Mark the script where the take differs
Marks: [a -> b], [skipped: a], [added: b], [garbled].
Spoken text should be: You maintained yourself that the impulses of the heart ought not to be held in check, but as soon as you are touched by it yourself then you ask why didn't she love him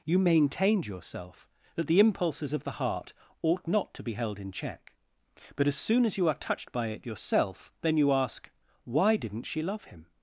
You maintained yourself that the impulses of the heart ought not to be held in check, but as soon as you are touched by it yourself then you ask why didn't she love him